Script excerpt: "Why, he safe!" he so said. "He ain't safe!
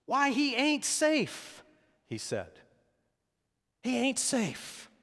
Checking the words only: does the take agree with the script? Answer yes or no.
no